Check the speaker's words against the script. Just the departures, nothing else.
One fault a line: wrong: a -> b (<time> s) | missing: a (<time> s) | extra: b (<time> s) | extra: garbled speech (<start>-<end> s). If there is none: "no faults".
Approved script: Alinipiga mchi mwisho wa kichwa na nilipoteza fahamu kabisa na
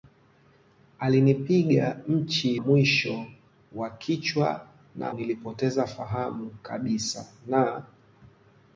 no faults